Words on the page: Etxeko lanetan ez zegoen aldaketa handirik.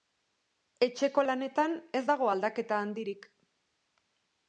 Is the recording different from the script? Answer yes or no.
yes